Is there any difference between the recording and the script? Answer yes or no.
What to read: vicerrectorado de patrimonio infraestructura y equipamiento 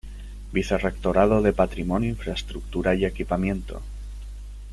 no